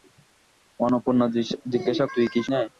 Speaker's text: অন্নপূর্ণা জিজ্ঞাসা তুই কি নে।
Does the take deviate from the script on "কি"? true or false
false